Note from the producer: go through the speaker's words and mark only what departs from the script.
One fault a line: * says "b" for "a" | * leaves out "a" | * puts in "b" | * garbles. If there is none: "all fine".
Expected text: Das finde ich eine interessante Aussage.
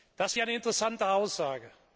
* leaves out "finde"